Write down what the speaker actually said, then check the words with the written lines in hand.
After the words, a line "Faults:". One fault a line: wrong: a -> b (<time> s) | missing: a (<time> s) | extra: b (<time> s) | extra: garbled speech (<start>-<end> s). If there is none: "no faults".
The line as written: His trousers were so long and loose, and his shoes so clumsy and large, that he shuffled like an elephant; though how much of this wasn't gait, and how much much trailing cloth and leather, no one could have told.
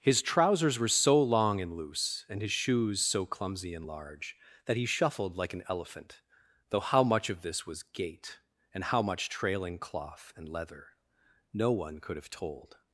His trousers were so long and loose, and his shoes so clumsy and large, that he shuffled like an elephant; though how much of this was gait, and how much trailing cloth and leather, no one could have told.
Faults:
wrong: wasn't -> was (7.7 s)
missing: much (9.3 s)